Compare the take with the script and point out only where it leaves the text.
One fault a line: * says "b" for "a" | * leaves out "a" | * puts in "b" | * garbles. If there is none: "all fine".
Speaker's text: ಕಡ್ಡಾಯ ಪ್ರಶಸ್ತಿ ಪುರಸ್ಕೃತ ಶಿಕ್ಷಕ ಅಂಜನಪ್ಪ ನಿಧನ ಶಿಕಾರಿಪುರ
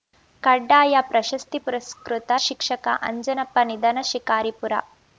all fine